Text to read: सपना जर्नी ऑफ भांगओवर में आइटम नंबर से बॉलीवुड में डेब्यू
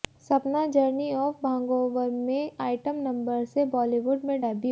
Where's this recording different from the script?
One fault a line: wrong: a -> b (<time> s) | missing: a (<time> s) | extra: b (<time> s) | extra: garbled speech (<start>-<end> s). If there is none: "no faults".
no faults